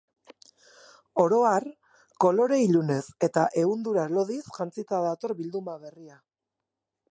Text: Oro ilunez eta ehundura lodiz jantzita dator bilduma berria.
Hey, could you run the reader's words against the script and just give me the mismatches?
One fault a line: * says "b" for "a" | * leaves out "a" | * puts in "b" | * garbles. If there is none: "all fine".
* puts in "har kolore"